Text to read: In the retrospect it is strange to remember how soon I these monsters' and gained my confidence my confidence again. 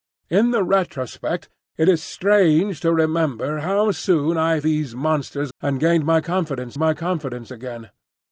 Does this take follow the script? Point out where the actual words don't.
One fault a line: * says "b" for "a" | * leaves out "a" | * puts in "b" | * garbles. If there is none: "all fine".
all fine